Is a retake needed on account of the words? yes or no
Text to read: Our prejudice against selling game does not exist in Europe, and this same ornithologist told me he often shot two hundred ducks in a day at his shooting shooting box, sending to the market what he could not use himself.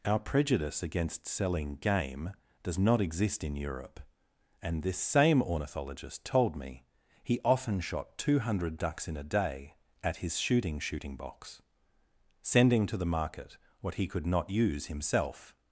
no